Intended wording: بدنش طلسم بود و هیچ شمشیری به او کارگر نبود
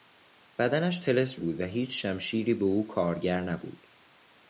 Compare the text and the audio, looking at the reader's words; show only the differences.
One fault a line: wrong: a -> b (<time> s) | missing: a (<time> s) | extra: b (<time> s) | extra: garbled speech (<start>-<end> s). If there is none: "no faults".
no faults